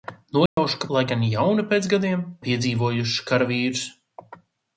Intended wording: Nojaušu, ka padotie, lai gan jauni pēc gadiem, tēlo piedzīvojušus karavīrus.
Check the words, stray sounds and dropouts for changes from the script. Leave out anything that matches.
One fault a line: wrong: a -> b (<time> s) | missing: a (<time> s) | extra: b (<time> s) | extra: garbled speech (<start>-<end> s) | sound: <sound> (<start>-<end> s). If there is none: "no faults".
sound: dropout (0.5-0.6 s)
missing: padotie (0.9 s)
missing: tēlo (2.3 s)